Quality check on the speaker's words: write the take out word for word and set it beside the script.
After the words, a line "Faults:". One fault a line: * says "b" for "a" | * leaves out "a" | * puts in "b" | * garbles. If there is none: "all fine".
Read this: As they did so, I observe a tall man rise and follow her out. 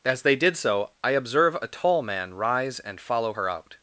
As they did so, I observe a tall man rise and follow her out.
Faults:
all fine